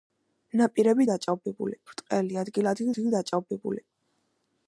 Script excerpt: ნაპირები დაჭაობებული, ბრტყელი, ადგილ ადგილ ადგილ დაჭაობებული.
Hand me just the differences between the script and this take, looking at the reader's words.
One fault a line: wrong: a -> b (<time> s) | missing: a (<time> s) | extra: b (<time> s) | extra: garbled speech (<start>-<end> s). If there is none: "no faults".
no faults